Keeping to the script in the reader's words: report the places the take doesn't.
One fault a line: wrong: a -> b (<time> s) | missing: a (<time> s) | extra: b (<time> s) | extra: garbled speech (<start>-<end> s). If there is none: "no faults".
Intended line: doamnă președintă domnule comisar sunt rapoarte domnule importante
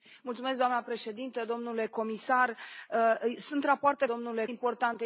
no faults